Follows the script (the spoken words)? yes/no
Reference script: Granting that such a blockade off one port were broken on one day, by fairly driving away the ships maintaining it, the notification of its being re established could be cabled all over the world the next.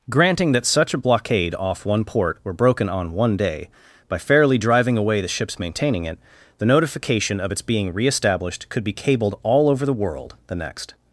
yes